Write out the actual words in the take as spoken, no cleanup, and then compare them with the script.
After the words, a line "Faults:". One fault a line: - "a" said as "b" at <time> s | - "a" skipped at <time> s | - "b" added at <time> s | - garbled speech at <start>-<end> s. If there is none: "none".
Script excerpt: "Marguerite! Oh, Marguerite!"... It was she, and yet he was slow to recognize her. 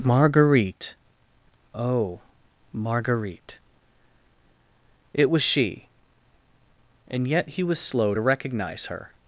"Marguerite! Oh, Marguerite!"... It was she, and yet he was slow to recognize her.
Faults:
none